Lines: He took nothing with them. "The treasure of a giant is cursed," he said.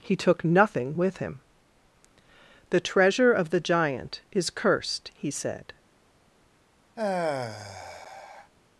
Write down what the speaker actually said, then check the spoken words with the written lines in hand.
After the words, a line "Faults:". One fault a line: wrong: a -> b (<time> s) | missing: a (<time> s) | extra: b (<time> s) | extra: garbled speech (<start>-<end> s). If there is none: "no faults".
He took nothing with him. "The treasure of the giant is cursed," he said.
Faults:
wrong: them -> him (1.2 s)
wrong: a -> the (3.5 s)